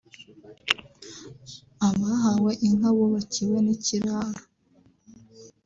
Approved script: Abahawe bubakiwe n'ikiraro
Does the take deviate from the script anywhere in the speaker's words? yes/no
yes